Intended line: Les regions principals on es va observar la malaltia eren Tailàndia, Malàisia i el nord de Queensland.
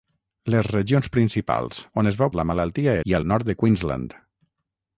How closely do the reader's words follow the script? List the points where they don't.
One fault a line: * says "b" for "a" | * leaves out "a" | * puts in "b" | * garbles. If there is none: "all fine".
* leaves out "observar"
* leaves out "eren Tailàndia Malàisia"